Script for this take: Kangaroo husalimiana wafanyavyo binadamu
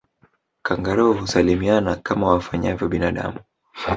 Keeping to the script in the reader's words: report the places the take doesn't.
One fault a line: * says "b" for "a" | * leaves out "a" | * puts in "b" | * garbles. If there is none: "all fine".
* puts in "kama"